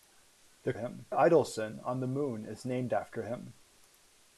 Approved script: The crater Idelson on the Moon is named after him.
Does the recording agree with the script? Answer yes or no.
no